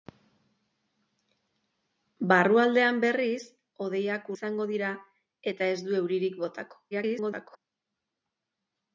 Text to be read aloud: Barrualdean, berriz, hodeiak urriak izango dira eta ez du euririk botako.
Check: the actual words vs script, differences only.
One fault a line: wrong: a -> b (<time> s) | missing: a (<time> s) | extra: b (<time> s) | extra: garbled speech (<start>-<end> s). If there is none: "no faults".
missing: urriak (4.3 s)
extra: garbled speech (6.9-7.6 s)